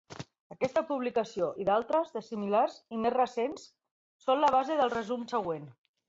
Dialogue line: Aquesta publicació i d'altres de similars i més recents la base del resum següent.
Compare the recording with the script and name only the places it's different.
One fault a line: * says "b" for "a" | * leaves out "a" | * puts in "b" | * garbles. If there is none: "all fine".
* puts in "són"